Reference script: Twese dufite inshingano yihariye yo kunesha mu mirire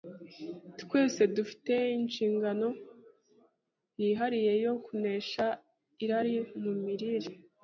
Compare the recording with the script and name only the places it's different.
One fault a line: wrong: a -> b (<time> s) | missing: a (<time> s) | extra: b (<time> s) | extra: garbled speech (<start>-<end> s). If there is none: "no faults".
extra: irari (6.0 s)